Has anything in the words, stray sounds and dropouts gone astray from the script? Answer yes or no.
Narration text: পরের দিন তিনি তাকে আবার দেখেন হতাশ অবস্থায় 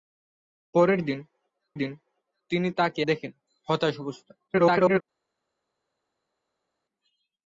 yes